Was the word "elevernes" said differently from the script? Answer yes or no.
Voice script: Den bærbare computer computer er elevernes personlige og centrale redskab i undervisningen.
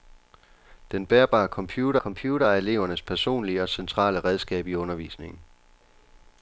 no